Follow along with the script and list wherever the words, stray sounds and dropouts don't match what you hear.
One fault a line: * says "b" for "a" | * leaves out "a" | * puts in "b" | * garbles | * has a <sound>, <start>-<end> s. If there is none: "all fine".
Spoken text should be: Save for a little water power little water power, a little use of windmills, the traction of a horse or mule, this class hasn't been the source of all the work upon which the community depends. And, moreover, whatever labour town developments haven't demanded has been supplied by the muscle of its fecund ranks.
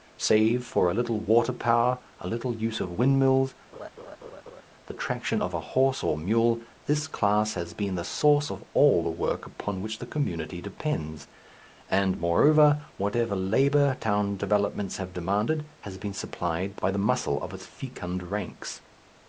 * leaves out "little water power"
* has a laugh, 3.7-4.6 s
* says "has" for "hasn't"
* says "have" for "haven't"